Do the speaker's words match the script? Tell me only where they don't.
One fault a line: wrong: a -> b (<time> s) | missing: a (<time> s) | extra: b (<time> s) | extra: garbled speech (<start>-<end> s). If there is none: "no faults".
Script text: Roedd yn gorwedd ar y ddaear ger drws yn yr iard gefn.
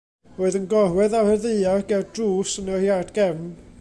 no faults